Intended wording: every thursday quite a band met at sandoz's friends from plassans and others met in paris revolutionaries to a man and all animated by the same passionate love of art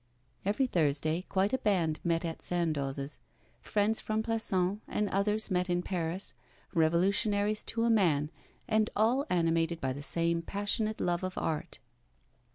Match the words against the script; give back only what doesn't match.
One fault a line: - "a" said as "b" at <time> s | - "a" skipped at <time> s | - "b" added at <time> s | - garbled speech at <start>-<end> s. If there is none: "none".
none